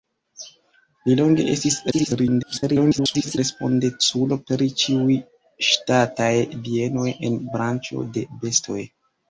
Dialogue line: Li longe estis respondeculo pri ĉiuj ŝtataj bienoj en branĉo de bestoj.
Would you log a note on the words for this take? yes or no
yes